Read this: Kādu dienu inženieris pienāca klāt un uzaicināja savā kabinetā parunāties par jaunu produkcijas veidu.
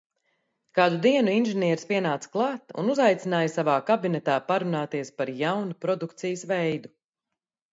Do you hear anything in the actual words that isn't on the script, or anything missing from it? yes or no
no